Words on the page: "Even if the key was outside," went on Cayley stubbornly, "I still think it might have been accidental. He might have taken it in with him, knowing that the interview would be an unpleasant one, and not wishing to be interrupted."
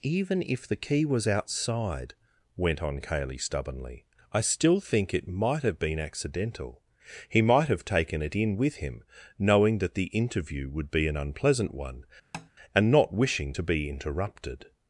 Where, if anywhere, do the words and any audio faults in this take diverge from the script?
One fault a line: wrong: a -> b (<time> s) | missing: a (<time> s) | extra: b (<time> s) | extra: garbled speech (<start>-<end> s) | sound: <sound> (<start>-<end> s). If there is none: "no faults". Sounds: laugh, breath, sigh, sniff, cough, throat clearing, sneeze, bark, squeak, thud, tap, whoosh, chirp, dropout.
sound: tap (12.3-12.5 s)